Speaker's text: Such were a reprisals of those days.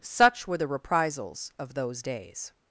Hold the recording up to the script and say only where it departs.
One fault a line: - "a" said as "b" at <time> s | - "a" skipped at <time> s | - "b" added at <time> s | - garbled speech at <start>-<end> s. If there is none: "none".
- "a" said as "the" at 0.6 s